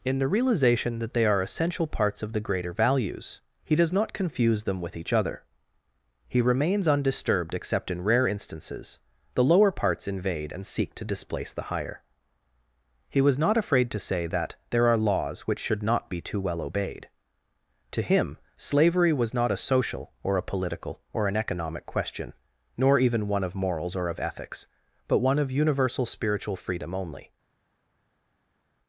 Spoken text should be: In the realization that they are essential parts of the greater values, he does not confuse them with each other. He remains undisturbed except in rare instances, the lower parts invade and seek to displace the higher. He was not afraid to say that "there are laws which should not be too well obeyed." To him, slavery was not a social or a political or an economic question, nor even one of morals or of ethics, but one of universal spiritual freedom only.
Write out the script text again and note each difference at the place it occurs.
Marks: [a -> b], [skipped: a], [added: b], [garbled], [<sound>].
In the realization that they are essential parts of the greater values, he does not confuse them with each other. He remains undisturbed except in rare instances, the lower parts invade and seek to displace the higher. He was not afraid to say that "there are laws which should not be too well obeyed." To him, slavery was not a social or a political or an economic question, nor even one of morals or of ethics, but one of universal spiritual freedom only.